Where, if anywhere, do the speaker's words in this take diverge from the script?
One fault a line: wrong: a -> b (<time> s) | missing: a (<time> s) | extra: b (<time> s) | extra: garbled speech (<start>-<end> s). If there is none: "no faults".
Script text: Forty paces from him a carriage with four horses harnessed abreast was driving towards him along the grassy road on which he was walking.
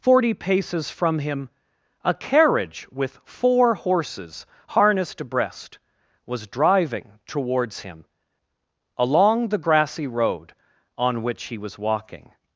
no faults